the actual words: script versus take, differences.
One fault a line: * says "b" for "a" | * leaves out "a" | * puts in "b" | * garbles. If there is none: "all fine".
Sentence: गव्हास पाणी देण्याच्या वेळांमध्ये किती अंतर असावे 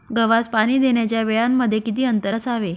all fine